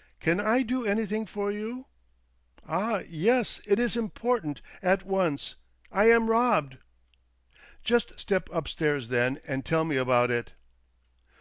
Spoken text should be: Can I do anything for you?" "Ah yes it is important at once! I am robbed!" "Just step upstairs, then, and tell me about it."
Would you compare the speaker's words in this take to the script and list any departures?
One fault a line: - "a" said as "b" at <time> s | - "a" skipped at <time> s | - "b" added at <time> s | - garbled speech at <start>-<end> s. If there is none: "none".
none